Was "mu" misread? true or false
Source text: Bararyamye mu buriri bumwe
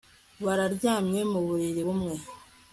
false